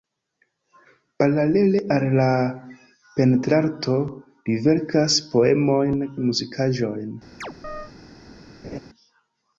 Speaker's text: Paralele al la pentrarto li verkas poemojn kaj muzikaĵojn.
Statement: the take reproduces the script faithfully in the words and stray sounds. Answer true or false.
false